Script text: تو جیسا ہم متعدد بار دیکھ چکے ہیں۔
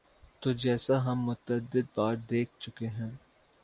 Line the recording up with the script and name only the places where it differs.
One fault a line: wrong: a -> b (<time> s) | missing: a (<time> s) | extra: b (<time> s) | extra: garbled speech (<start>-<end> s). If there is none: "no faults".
no faults